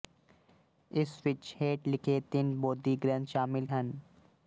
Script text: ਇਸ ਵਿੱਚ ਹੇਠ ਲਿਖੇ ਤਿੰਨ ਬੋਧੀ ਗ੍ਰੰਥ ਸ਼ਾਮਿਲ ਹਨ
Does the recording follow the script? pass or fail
pass